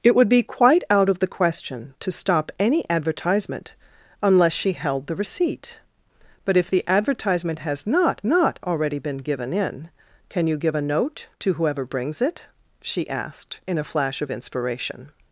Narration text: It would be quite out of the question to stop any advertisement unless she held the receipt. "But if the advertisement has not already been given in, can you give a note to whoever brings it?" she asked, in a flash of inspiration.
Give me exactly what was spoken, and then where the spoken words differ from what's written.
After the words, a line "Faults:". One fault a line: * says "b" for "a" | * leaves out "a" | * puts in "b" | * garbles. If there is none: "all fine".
It would be quite out of the question to stop any advertisement unless she held the receipt. "But if the advertisement has not not already been given in, can you give a note to whoever brings it?" she asked, in a flash of inspiration.
Faults:
* puts in "not"